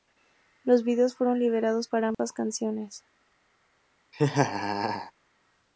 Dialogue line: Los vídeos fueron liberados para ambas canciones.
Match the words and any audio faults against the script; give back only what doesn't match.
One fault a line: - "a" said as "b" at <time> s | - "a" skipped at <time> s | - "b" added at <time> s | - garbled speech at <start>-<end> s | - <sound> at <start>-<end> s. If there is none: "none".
- dropout at 2.1-2.2 s
- laugh at 4.1-5.1 s